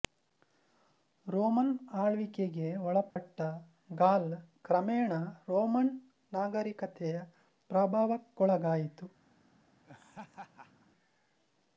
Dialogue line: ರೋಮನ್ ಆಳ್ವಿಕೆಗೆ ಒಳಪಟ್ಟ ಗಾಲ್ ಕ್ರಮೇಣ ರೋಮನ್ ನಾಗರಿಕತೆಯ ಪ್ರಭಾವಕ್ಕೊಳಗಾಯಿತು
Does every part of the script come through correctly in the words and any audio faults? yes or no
no